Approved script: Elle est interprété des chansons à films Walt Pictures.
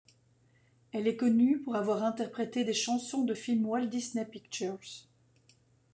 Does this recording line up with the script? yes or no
no